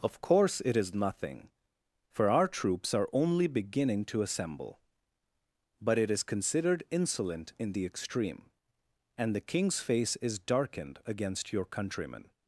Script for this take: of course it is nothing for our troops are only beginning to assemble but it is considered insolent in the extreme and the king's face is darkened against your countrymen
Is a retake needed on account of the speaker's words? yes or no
no